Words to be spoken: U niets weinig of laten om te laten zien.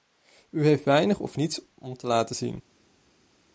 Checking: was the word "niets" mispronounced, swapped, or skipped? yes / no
yes